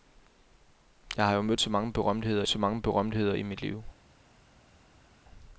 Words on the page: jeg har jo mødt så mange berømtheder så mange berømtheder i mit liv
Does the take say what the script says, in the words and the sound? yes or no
yes